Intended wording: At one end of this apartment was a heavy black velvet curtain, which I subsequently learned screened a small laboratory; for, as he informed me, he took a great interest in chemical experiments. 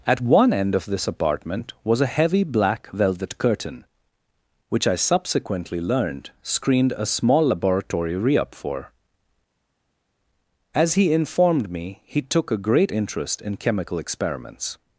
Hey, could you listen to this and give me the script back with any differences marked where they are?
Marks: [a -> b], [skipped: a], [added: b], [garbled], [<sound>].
At one end of this apartment was a heavy black velvet curtain, which I subsequently learned screened a small laboratory; [added: re up] for, as he informed me, he took a great interest in chemical experiments.